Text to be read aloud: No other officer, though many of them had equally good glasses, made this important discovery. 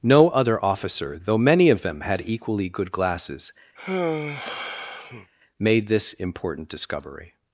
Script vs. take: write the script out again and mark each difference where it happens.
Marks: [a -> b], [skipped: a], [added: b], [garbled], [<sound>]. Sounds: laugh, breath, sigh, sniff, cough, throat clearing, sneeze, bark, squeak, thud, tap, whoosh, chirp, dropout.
No other officer, though many of them had equally good glasses, [sigh] made this important discovery.